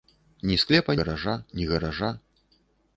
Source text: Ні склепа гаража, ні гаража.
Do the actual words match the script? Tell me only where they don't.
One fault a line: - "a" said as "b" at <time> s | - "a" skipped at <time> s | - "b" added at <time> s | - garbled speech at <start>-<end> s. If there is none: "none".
none